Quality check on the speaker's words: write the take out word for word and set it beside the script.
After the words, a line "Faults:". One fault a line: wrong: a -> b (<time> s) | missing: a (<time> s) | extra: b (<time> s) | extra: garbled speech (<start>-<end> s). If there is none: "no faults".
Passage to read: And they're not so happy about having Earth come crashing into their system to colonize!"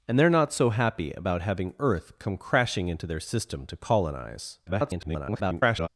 And they're not so happy about having Earth come crashing into their system to colonize!" [garbled]
Faults:
extra: garbled speech (4.7-5.9 s)